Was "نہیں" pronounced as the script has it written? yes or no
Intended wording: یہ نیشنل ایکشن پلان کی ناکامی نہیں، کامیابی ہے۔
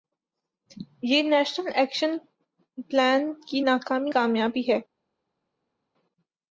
no